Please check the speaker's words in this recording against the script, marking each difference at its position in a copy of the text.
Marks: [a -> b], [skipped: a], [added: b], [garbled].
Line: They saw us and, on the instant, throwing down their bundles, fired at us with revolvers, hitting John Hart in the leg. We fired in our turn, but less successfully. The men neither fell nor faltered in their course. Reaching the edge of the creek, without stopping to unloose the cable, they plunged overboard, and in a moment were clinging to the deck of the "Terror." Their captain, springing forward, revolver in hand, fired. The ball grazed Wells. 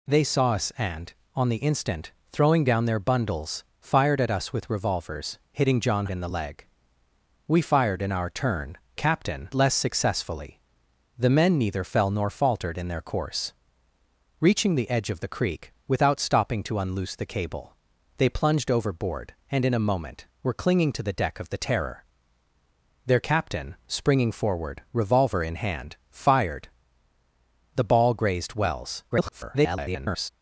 They saw us and, on the instant, throwing down their bundles, fired at us with revolvers, hitting John [skipped: Hart] in the leg. We fired in our turn, [but -> captain] less successfully. The men neither fell nor faltered in their course. Reaching the edge of the creek, without stopping to unloose the cable, they plunged overboard, and in a moment were clinging to the deck of the "Terror." Their captain, springing forward, revolver in hand, fired. The ball grazed Wells. [garbled]